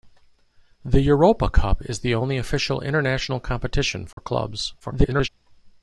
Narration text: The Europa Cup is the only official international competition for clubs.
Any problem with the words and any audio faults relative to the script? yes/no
yes